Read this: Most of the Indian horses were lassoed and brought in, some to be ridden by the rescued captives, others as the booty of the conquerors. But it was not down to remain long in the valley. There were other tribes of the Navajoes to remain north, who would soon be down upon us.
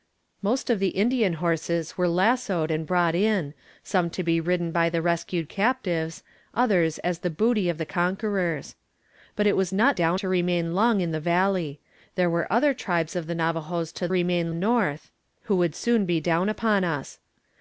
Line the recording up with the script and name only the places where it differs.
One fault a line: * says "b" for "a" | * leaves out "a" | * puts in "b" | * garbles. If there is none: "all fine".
all fine